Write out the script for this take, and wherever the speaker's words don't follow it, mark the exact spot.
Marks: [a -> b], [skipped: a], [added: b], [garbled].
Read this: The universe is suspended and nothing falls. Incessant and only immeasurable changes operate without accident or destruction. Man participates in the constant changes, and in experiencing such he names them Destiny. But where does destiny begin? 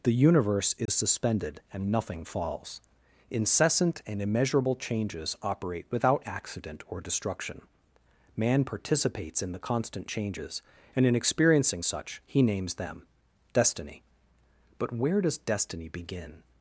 The universe is suspended and nothing falls. Incessant and [skipped: only] immeasurable changes operate without accident or destruction. Man participates in the constant changes, and in experiencing such he names them Destiny. But where does destiny begin?